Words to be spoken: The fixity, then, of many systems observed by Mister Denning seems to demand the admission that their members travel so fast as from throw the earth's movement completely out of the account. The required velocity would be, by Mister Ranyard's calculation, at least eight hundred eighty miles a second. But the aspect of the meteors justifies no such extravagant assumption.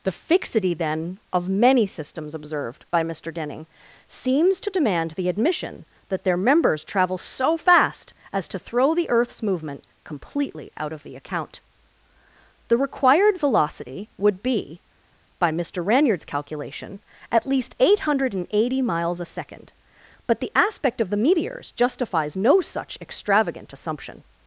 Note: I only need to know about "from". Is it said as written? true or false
false